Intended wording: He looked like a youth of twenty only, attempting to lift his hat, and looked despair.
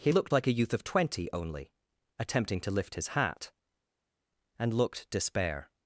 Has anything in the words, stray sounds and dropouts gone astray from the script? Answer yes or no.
no